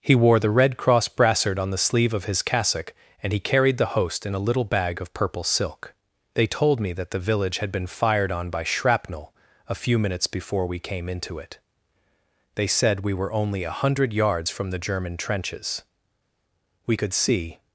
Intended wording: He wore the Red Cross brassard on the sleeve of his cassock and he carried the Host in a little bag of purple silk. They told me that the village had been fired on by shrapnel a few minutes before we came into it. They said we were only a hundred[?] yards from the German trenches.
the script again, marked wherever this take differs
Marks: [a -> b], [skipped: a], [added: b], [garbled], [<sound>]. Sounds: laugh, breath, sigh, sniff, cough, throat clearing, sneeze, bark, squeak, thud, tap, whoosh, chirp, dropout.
He wore the Red Cross brassard on the sleeve of his cassock and he carried the Host in a little bag of purple silk. They told me that the village had been fired on by shrapnel a few minutes before we came into it. They said we were only a hundred[?] yards from the German trenches. [added: We could see]